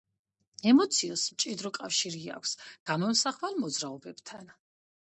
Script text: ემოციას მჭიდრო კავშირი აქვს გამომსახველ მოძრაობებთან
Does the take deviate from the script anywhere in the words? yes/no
no